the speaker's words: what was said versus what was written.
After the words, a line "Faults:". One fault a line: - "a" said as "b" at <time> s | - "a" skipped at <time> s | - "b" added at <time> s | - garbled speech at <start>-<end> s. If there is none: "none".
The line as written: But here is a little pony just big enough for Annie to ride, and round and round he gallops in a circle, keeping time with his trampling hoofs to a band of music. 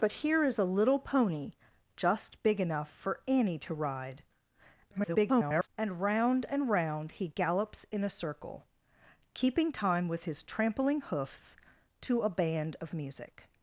But here is a little pony just big enough for Annie to ride, [garbled] and round and round he gallops in a circle, keeping time with his trampling hoofs to a band of music.
Faults:
- garbled speech at 4.9-5.7 s